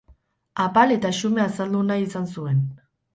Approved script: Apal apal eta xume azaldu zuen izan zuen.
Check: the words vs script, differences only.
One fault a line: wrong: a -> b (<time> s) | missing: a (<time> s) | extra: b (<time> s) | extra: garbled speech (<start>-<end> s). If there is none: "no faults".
missing: apal (0.9 s)
wrong: zuen -> nahi (1.9 s)